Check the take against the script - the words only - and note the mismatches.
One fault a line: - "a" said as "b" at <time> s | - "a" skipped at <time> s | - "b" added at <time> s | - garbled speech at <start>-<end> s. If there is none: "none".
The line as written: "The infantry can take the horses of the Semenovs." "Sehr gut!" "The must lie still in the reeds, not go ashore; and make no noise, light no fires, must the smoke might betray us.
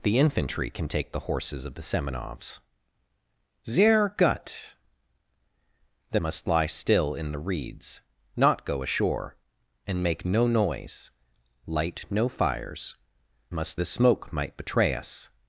none